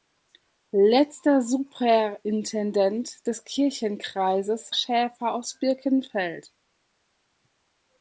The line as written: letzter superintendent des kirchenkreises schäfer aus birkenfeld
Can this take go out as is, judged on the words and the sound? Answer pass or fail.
pass